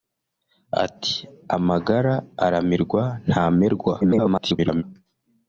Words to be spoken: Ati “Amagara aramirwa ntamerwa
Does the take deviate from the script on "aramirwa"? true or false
false